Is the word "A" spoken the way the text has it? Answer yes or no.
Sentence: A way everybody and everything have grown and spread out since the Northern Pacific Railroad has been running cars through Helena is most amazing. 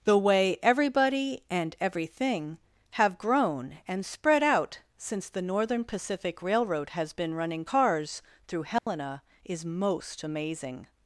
no